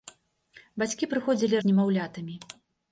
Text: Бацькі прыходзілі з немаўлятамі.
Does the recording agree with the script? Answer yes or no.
yes